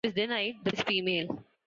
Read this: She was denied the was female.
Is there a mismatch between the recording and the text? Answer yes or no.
no